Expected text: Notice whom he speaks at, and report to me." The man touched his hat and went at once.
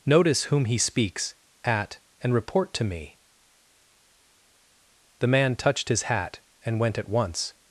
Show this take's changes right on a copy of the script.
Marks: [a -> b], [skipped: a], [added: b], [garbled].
Notice whom he speaks at, and report to me." The man touched his hat and went at once.